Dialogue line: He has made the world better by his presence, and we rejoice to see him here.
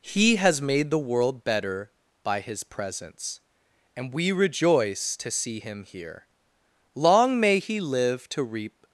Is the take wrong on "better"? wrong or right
right